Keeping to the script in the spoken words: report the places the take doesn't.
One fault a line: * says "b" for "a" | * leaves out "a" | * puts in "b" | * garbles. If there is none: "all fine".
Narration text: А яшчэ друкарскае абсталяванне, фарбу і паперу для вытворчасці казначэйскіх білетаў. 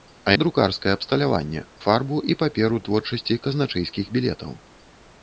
* leaves out "яшчэ"
* leaves out "для"